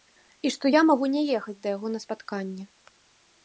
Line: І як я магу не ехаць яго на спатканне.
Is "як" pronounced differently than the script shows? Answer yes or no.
yes